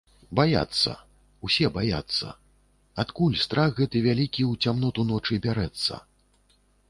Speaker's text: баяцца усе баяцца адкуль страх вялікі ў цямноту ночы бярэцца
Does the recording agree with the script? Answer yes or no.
no